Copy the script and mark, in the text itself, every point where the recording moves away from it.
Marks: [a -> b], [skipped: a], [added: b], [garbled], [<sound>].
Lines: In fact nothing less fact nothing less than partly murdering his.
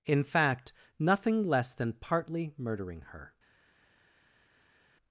In fact nothing less [skipped: fact nothing less] than partly murdering [his. -> her]